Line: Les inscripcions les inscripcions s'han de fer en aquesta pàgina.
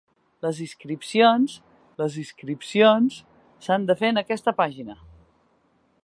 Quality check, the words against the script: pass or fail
pass